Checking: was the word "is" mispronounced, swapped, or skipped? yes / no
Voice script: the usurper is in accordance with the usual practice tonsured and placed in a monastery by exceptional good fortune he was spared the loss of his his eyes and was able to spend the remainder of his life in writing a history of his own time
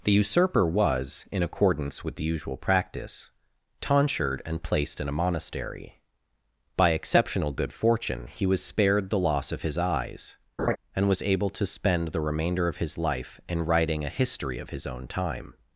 yes